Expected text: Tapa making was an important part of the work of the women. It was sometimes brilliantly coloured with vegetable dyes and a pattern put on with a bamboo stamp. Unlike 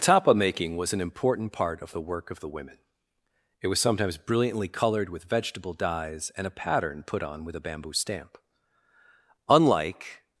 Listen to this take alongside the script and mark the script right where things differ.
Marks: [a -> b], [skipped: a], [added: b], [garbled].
Tapa making was an important part of the work of the women. It was sometimes brilliantly coloured with vegetable dyes and a pattern put on with a bamboo stamp. Unlike